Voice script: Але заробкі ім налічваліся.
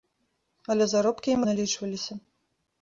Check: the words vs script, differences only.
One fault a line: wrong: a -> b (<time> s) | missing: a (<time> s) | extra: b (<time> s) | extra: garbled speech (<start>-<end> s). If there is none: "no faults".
no faults